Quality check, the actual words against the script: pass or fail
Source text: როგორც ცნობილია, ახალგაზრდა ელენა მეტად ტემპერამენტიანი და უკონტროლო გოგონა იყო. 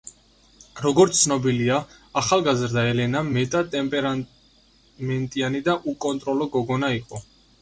pass